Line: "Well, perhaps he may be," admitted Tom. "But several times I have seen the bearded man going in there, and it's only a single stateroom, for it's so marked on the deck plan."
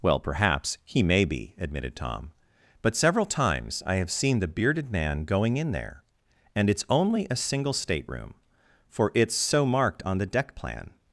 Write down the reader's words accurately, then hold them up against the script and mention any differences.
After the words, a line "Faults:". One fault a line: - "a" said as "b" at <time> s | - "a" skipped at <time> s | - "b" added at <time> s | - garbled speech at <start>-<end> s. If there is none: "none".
"Well, perhaps he may be," admitted Tom. "But several times I have seen the bearded man going in there, and it's only a single stateroom, for it's so marked on the deck plan."
Faults:
none